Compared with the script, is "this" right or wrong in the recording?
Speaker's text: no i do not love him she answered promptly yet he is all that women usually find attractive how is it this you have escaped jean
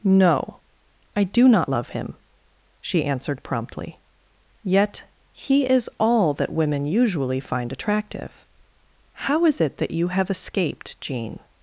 wrong